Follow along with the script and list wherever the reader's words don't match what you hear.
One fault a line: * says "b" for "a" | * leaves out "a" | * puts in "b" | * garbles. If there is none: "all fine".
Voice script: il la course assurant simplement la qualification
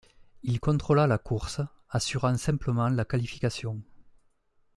* puts in "contrôla"